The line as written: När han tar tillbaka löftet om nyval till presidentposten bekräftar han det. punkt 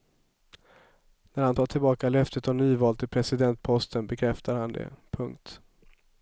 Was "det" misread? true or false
false